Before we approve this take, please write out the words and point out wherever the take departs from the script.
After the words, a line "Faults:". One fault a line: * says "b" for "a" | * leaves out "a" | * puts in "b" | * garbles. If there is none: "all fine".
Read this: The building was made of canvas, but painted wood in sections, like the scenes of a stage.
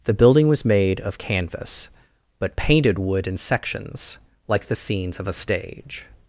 The building was made of canvas, but painted wood in sections, like the scenes of a stage.
Faults:
all fine